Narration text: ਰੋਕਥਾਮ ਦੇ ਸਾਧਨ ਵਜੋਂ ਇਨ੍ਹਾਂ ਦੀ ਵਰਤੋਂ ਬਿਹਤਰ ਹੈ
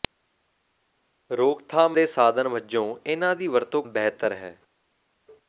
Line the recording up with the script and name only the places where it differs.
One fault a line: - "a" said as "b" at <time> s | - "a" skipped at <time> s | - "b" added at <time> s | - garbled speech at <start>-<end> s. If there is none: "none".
none